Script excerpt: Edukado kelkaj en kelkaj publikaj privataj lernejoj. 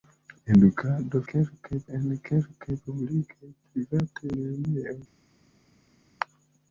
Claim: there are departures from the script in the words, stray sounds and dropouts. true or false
false